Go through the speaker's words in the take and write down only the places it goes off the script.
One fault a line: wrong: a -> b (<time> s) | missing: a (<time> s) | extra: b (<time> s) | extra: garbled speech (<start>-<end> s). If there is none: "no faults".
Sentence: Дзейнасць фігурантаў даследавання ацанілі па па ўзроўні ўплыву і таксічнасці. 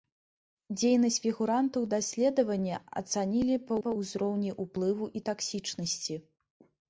no faults